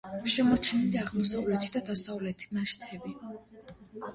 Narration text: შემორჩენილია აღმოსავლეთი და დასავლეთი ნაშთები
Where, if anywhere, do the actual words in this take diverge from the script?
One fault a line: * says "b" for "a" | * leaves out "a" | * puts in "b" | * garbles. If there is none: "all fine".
all fine